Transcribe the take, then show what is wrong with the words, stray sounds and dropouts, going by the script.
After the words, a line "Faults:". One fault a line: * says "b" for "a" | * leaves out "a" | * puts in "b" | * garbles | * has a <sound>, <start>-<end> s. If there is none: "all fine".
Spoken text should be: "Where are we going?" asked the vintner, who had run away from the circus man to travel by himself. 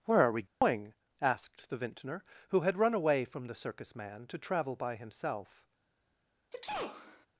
"Where are we going?" asked the vintner, who had run away from the circus man to travel by himself.
Faults:
* has a dropout, 0.5-0.6 s
* has a sneeze, 6.5-7.3 s